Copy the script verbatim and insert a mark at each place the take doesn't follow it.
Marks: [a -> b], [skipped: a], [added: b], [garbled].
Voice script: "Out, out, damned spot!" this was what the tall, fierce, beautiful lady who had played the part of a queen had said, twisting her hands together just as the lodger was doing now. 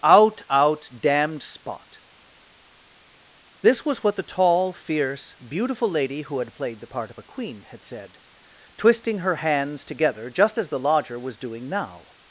"Out, out, damned spot!" this was what the tall, fierce, beautiful lady who had played the part of a queen had said, twisting her hands together just as the lodger was doing now.